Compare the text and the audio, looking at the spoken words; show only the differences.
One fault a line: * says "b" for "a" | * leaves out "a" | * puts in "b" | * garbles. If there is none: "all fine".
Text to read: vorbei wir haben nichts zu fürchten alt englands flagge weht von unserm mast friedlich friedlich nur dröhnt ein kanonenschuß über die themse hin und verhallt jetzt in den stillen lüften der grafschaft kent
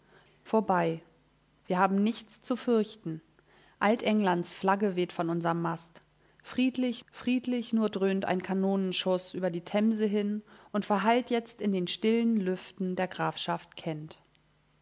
all fine